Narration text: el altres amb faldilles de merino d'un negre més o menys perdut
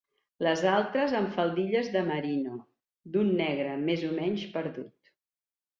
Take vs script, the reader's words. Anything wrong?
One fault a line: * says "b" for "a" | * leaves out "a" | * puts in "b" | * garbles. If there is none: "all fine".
* says "les" for "el"